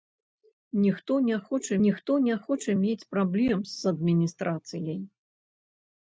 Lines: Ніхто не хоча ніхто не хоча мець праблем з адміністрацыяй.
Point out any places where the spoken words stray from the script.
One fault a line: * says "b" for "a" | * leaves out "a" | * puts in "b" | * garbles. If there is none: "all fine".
all fine